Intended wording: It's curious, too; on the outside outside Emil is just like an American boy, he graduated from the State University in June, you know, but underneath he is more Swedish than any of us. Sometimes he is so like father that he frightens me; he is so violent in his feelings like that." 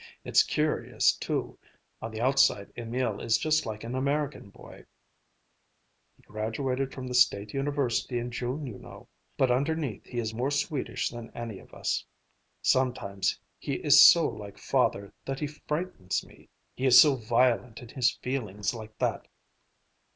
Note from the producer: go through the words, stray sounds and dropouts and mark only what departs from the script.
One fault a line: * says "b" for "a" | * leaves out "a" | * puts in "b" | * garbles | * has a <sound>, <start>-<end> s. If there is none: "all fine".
* leaves out "outside"